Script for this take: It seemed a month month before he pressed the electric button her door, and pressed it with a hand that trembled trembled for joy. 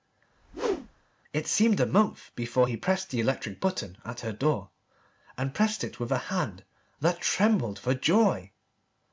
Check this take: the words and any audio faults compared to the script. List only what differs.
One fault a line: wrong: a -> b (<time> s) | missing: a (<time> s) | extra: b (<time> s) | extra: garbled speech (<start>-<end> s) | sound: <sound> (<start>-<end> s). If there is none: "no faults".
sound: whoosh (0.3-1.1 s)
missing: month (2.3 s)
extra: at (4.0 s)
missing: trembled (7.8 s)